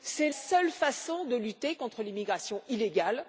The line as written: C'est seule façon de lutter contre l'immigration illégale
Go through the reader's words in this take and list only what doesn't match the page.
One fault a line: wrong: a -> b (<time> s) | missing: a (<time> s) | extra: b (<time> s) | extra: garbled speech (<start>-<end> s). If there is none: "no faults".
no faults